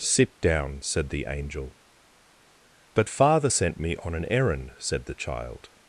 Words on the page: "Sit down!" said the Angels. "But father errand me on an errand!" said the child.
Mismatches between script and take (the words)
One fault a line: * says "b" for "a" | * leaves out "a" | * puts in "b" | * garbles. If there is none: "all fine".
* says "Angel" for "Angels"
* says "sent" for "errand"